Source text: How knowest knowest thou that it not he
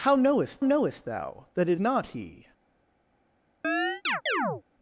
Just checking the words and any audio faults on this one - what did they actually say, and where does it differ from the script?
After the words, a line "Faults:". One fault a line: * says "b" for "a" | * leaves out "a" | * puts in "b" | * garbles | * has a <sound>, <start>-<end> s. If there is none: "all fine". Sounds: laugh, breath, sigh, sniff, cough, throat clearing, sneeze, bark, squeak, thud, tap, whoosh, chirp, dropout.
How knowest knowest thou that it not he
Faults:
* has a chirp, 3.6-4.6 s